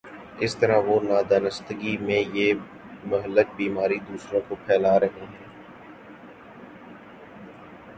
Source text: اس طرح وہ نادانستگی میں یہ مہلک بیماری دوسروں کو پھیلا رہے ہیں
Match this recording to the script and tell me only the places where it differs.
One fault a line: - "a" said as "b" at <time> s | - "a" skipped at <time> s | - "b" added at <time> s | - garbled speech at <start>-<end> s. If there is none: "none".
none